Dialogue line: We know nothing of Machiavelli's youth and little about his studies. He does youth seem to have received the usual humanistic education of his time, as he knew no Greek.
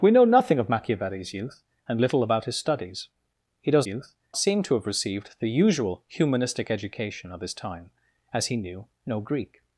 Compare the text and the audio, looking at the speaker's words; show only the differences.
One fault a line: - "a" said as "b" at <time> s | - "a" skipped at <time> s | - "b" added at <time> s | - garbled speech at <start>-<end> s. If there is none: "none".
none